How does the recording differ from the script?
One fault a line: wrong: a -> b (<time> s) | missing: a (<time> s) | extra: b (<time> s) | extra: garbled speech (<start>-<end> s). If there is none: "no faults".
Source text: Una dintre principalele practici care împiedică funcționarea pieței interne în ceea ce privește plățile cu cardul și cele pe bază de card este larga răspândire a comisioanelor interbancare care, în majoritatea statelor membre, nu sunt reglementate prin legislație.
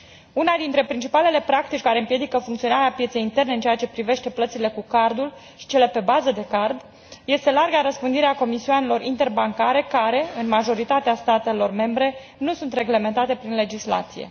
no faults